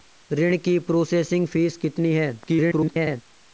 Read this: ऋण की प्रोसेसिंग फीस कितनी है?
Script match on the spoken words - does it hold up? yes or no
no